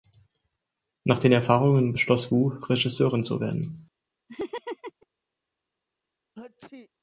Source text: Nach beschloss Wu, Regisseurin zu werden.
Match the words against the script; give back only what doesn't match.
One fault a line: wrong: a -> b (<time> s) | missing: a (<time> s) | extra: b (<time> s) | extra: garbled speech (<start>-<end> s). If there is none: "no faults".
extra: den Erfahrungen (1.2 s)